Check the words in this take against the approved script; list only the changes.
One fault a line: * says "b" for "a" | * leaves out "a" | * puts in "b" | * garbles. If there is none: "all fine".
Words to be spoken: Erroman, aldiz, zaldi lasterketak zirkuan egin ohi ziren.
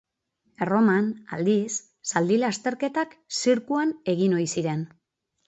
all fine